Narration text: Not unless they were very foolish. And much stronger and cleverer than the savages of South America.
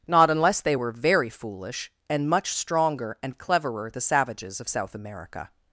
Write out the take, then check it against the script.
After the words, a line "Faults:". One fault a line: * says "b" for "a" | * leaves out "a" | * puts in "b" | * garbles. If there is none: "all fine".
Not unless they were very foolish. And much stronger and cleverer the savages of South America.
Faults:
* leaves out "than"